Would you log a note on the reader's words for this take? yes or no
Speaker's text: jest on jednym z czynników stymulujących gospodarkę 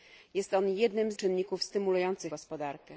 no